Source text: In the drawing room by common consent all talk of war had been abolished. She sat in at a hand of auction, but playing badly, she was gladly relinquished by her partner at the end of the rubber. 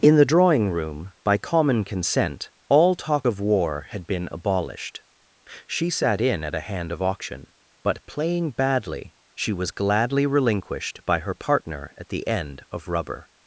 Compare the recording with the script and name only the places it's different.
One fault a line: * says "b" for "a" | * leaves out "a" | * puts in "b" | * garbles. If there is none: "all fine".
* leaves out "the"